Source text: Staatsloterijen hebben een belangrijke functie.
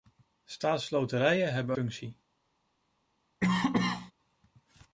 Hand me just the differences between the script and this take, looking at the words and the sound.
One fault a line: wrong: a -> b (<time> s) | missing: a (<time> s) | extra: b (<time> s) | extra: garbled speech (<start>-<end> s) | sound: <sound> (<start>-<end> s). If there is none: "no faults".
missing: een belangrijke (1.8 s)
sound: cough (3.4-4.1 s)